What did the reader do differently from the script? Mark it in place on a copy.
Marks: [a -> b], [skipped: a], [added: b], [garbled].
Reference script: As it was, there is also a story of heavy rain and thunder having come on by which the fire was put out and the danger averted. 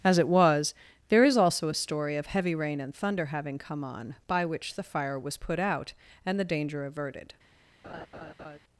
As it was, there is also a story of heavy rain and thunder having come on by which the fire was put out and the danger averted.